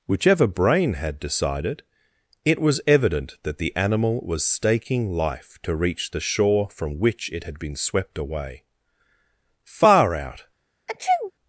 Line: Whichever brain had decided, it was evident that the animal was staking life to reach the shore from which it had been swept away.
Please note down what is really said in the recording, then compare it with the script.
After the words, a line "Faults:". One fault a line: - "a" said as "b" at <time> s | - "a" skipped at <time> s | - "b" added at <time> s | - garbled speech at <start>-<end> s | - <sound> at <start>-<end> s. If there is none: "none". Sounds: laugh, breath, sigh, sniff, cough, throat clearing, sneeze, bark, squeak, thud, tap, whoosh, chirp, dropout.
Whichever brain had decided, it was evident that the animal was staking life to reach the shore from which it had been swept away. Far out
Faults:
- "Far out" added at 9.6 s
- sneeze at 10.9-11.3 s